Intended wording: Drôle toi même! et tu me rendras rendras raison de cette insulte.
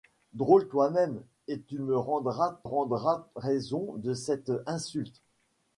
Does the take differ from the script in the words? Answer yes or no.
no